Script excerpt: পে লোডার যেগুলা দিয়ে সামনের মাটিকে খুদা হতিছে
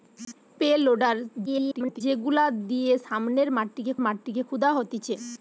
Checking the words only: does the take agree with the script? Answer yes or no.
no